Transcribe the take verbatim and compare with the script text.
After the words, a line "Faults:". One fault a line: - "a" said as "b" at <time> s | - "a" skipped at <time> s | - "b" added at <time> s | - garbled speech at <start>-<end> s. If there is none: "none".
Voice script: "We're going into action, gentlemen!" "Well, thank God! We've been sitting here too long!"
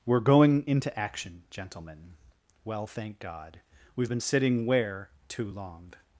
"We're going into action, gentlemen!" "Well, thank God! We've been sitting where too long!"
Faults:
- "here" said as "where" at 4.7 s